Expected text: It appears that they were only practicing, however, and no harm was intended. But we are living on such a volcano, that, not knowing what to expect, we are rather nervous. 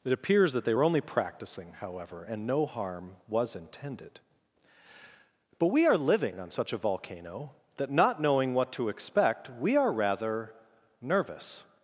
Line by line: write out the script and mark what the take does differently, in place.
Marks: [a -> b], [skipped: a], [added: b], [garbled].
It appears that they were only practicing, however, and no harm was intended. But we are living on such a volcano, that, not knowing what to expect, we are rather nervous.